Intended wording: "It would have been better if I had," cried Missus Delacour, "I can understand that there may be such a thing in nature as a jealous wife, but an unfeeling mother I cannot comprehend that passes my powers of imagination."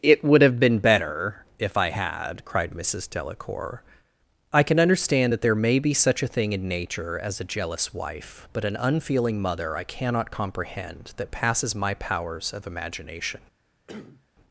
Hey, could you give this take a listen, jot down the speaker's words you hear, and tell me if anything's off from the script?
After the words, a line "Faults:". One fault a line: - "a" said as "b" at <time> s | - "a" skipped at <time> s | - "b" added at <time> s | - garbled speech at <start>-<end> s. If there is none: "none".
"It would have been better if I had," cried Missus Delacour, "I can understand that there may be such a thing in nature as a jealous wife, but an unfeeling mother I cannot comprehend that passes my powers of imagination."
Faults:
none